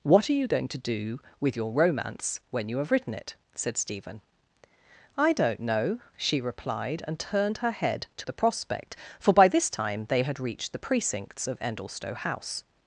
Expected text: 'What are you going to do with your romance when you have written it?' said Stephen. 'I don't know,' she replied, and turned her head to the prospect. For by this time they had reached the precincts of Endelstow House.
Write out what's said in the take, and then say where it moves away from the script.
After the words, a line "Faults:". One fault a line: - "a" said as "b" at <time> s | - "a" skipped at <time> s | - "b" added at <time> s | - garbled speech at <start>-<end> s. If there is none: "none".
'What are you going to do with your romance when you have written it?' said Stephen. 'I don't know,' she replied, and turned her head to the prospect. For by this time they had reached the precincts of Endelstow House.
Faults:
none